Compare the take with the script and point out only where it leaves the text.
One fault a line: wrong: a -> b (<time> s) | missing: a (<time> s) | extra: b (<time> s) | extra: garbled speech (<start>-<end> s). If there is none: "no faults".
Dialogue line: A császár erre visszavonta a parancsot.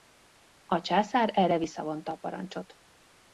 no faults